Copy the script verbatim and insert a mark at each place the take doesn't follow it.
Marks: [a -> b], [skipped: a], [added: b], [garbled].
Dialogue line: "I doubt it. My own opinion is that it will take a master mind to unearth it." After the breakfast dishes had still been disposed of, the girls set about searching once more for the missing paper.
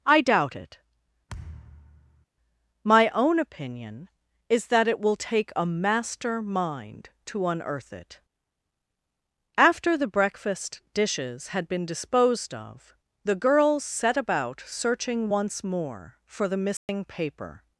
"I doubt it. My own opinion is that it will take a master mind to unearth it." After the breakfast dishes had [skipped: still] been disposed of, the girls set about searching once more for the missing paper.